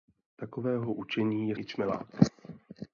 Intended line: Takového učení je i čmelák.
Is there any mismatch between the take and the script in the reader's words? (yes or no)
no